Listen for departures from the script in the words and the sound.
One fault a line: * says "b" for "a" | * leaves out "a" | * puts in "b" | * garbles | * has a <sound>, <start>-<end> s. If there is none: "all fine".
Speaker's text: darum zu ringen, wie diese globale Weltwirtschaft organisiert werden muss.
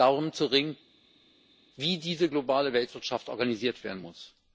all fine